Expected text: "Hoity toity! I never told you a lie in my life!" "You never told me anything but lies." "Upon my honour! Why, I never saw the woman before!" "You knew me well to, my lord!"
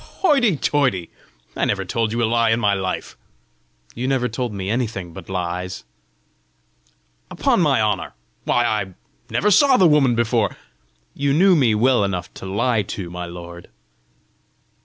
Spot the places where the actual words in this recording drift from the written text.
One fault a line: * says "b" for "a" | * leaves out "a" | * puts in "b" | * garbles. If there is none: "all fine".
* puts in "enough to lie"